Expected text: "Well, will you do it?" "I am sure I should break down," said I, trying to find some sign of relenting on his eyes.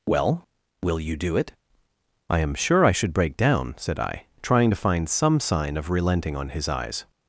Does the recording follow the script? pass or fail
pass